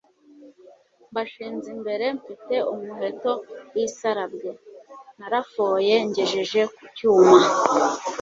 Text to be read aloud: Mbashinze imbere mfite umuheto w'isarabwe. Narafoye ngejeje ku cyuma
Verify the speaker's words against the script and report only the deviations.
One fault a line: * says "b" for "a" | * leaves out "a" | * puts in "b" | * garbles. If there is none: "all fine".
all fine